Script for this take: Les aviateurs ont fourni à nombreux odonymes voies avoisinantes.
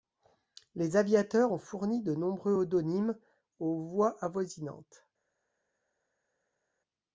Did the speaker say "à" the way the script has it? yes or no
no